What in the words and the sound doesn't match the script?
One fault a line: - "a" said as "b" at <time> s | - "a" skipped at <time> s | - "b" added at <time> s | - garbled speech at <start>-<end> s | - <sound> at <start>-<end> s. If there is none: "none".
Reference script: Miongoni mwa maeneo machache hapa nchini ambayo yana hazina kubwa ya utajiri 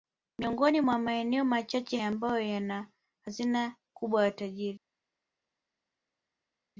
- "hapa nchini" skipped at 2.0 s